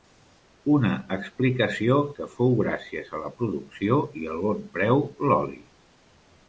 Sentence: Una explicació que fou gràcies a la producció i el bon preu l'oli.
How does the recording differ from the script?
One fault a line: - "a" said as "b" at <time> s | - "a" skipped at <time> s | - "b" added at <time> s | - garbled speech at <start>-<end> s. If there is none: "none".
none